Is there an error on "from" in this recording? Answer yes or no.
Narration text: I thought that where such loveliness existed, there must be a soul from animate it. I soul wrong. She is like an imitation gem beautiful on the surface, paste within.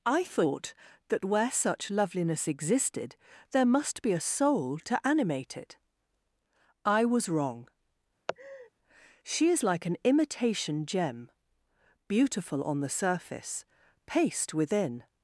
yes